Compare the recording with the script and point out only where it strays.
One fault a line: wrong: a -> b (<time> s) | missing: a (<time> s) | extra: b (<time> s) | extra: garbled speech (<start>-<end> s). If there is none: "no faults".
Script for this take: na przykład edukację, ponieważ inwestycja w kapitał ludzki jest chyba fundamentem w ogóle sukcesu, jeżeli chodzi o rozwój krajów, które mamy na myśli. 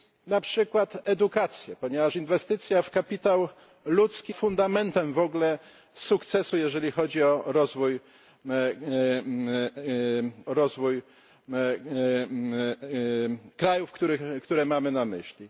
missing: jest chyba (4.3 s)
extra: rozwój (10.5 s)